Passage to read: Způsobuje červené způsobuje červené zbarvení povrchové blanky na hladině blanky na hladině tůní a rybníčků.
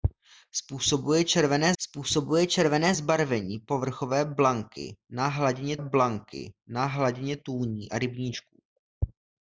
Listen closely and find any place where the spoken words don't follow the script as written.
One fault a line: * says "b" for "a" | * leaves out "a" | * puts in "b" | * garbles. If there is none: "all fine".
all fine